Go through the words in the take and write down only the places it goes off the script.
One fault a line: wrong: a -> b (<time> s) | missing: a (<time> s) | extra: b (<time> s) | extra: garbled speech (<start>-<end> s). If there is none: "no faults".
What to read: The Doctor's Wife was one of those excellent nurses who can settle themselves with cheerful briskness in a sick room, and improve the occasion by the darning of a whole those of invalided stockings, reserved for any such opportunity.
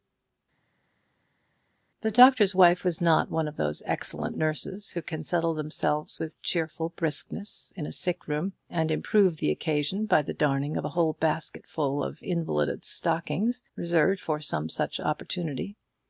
extra: not (3.0 s)
wrong: those -> basketful (11.1 s)
wrong: any -> some (14.4 s)